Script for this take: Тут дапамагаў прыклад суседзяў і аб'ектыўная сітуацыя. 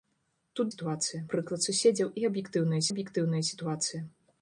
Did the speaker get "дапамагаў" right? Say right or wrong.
wrong